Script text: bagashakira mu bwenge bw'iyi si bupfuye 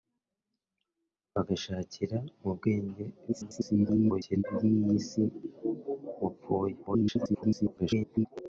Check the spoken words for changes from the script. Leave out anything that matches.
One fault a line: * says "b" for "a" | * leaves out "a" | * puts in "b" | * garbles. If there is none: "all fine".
* garbles
* garbles